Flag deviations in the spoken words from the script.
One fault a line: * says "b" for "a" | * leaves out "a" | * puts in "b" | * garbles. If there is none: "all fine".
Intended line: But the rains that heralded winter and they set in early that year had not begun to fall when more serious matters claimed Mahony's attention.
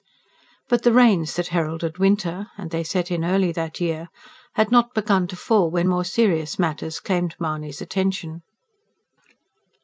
all fine